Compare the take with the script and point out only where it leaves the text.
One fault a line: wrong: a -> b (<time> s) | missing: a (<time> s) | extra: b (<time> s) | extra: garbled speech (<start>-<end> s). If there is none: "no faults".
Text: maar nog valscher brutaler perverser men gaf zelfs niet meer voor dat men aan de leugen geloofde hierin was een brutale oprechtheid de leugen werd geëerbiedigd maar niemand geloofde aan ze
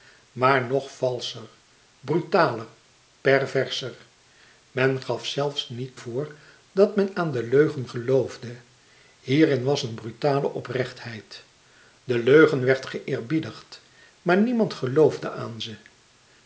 missing: meer (6.0 s)